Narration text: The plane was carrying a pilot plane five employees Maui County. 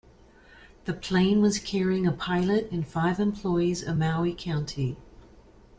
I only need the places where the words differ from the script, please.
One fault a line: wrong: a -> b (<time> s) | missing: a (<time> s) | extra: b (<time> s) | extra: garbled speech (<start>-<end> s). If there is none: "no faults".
wrong: plane -> and (2.7 s)
extra: of (3.8 s)